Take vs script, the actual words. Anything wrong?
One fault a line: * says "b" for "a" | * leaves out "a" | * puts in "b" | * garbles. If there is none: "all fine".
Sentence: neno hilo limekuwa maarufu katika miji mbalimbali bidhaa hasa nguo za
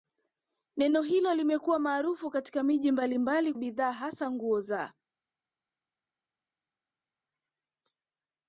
all fine